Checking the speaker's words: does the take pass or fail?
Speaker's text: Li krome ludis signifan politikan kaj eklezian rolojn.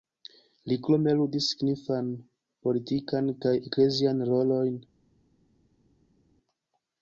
pass